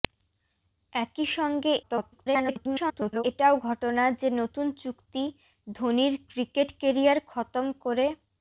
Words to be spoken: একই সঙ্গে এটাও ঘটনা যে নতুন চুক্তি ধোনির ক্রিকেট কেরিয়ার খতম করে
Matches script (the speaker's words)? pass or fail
fail